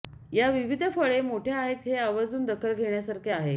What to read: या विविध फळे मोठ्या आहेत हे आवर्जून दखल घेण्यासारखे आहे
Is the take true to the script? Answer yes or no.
yes